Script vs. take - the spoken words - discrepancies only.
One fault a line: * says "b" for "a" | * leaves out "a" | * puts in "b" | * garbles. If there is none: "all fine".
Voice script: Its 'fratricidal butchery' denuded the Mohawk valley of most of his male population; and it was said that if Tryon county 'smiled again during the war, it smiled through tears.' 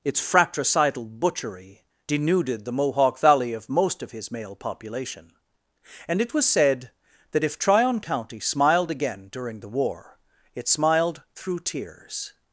all fine